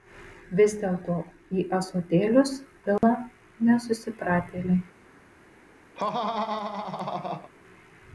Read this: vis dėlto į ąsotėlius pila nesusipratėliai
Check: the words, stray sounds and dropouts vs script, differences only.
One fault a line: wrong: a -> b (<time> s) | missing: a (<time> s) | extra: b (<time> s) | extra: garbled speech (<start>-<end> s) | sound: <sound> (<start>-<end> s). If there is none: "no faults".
sound: dropout (3.0-3.0 s)
sound: laugh (5.9-7.5 s)